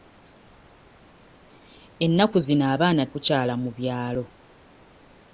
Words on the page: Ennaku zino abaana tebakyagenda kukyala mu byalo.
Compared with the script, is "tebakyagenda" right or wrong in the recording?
wrong